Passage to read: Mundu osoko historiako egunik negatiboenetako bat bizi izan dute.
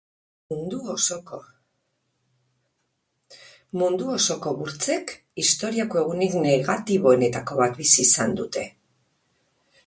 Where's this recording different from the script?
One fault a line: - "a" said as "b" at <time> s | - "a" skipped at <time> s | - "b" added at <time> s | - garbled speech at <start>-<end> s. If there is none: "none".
- "burtsek" added at 4.6 s